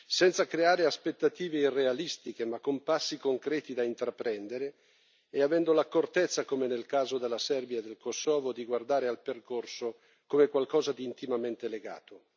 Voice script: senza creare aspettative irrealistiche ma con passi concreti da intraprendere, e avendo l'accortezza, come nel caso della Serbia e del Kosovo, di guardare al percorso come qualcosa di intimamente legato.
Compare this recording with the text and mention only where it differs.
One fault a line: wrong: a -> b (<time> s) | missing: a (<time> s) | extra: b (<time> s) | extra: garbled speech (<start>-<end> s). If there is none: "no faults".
no faults